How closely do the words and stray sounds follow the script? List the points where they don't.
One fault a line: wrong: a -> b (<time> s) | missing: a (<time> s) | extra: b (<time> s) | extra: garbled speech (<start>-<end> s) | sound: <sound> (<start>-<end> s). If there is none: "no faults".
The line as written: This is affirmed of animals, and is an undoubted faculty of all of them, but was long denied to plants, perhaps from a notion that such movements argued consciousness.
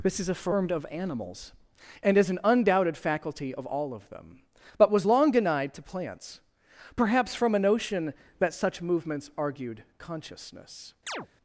sound: chirp (11.1-11.3 s)